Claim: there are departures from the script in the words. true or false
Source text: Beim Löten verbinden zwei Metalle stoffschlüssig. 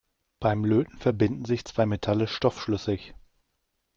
true